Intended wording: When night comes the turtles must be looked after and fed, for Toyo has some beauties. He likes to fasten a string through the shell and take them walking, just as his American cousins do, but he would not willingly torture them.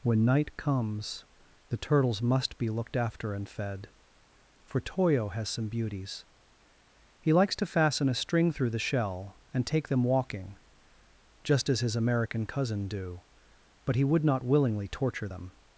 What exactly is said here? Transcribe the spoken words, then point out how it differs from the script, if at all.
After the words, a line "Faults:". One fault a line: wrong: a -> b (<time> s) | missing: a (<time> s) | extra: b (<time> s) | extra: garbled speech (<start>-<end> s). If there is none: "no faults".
When night comes the turtles must be looked after and fed, for Toyo has some beauties. He likes to fasten a string through the shell and take them walking, just as his American cousin do, but he would not willingly torture them.
Faults:
wrong: cousins -> cousin (12.5 s)